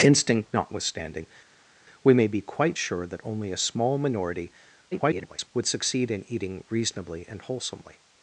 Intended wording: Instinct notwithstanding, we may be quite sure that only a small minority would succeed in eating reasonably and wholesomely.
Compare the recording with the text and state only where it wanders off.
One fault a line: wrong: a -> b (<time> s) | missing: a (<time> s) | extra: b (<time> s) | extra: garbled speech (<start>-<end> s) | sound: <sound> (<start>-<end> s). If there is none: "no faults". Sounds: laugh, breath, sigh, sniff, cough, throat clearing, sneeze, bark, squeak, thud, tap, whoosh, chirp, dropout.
extra: garbled speech (4.9-5.5 s)